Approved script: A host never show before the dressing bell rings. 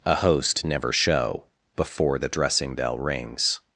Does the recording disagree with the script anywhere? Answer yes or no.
no